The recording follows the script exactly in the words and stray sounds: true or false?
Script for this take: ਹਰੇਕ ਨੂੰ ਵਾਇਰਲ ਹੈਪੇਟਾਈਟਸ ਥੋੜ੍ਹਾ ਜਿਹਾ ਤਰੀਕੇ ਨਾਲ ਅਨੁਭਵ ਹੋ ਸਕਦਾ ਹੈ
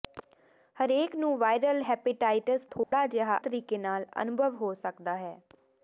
false